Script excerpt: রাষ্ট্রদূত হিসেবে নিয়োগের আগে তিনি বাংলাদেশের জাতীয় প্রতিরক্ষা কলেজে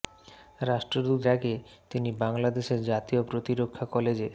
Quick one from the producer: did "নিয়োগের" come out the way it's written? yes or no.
no